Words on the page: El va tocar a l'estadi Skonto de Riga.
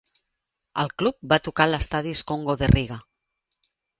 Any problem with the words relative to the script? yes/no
yes